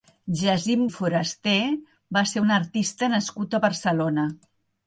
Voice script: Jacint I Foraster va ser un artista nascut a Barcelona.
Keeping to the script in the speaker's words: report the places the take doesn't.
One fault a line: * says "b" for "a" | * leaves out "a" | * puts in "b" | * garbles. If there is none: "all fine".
all fine